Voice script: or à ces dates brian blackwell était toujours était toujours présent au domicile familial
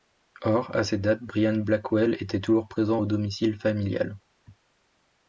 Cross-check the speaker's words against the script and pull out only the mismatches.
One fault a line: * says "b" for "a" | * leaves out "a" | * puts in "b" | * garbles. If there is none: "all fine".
* leaves out "était toujours"